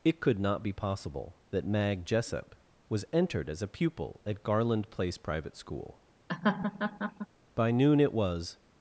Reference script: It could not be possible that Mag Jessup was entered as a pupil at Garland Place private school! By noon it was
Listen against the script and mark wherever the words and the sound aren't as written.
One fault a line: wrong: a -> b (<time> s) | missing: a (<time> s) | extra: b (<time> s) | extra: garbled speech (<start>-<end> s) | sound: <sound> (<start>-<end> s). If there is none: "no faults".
sound: laugh (6.3-7.3 s)